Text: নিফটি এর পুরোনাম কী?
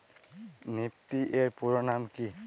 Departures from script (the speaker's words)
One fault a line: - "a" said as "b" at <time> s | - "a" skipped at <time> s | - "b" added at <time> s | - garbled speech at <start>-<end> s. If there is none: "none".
none